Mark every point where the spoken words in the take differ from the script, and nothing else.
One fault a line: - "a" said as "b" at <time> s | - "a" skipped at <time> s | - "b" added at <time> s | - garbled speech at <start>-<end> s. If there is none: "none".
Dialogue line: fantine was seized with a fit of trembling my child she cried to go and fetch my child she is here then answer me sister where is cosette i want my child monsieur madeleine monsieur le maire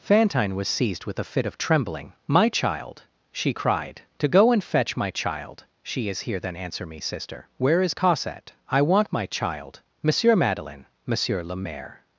none